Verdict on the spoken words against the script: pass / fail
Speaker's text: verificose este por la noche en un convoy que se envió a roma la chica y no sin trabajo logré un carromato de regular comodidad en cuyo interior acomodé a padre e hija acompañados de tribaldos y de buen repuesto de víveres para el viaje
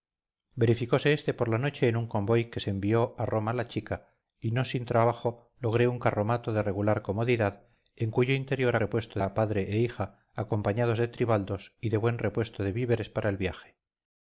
fail